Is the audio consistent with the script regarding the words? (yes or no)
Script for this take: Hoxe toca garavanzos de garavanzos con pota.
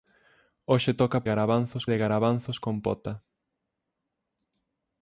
yes